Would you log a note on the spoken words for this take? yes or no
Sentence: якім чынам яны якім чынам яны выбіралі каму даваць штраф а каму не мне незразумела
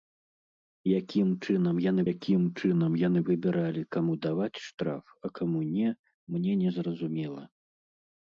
no